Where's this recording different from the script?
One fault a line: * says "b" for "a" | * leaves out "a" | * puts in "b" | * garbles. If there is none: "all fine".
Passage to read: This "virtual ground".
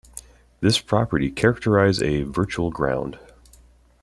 * puts in "property characterize a"